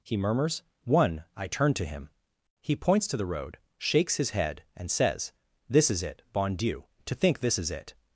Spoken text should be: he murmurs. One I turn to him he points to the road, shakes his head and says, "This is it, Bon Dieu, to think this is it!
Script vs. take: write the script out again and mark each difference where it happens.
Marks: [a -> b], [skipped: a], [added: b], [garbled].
he murmurs. One I turn to him he points to the road, shakes his head and says, "This is it, Bon Dieu, to think this is it!